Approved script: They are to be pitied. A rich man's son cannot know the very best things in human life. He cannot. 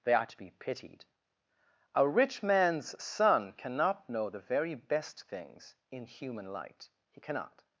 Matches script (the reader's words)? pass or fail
fail